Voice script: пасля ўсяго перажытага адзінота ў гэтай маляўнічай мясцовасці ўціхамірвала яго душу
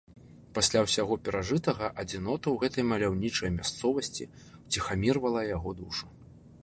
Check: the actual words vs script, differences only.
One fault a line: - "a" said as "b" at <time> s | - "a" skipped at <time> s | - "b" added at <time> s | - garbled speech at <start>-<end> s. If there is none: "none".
none